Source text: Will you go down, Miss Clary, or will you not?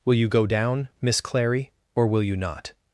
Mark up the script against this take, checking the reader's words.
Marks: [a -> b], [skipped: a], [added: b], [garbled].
Will you go down, Miss Clary, or will you not?